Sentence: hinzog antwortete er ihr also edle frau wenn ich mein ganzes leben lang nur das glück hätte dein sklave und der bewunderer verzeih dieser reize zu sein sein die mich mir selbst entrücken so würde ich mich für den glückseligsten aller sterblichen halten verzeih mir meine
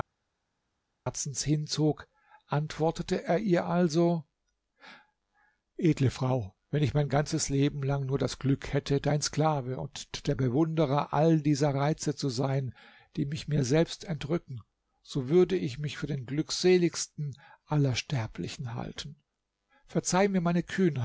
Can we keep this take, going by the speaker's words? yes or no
no